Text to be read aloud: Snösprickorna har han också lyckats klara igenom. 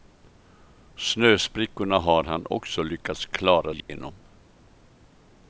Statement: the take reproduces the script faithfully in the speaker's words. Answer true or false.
true